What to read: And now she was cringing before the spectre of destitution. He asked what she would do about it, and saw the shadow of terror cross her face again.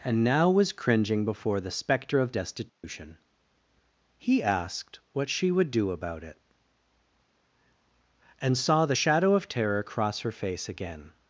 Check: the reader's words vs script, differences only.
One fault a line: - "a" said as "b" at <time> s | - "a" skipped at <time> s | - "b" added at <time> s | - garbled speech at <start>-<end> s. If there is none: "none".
- "she" skipped at 0.5 s